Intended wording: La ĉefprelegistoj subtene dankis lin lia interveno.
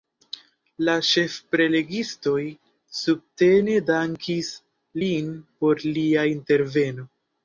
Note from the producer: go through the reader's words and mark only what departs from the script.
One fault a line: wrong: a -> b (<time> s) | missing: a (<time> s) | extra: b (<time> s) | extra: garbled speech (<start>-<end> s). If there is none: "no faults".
extra: por (5.6 s)